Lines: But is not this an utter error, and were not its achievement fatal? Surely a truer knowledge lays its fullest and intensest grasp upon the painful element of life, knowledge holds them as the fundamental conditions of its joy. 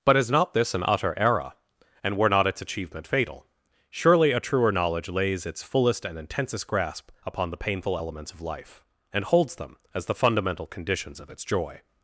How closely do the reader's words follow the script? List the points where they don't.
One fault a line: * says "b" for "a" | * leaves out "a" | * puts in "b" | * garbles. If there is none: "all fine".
* says "elements" for "element"
* says "and" for "knowledge"